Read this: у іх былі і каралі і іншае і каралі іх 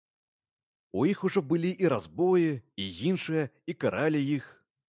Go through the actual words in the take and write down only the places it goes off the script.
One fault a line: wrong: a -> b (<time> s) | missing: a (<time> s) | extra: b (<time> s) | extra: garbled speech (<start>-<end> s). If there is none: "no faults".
extra: ужо (1.2 s)
wrong: каралі -> разбоі (1.9 s)